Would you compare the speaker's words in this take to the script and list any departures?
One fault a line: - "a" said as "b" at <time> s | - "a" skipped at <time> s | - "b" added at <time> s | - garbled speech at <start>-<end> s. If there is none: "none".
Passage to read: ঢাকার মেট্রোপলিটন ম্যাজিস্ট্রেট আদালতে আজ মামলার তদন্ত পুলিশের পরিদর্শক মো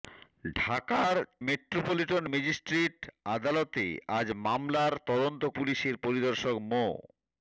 none